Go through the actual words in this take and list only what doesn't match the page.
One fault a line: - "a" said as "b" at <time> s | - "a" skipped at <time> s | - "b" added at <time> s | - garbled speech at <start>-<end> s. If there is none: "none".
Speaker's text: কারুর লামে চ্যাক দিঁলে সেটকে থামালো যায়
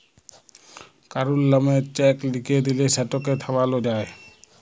- "লিখে" added at 2.3 s